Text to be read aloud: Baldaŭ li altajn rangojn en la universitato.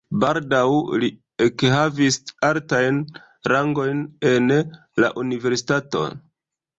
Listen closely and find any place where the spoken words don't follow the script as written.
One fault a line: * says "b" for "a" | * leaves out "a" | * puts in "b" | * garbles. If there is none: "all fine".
* puts in "ekhavis"